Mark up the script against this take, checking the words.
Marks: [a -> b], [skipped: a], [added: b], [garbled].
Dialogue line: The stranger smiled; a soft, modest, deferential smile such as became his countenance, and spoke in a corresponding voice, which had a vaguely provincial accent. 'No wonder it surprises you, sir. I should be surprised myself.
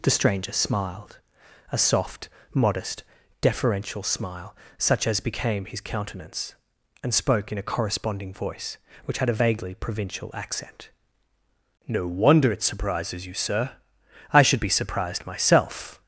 The stranger smiled; a soft, modest, deferential smile such as became his countenance, and spoke in a corresponding voice, which had a vaguely provincial accent. 'No wonder it surprises you, sir. I should be surprised myself.